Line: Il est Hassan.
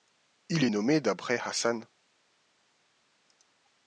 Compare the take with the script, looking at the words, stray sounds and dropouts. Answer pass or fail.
fail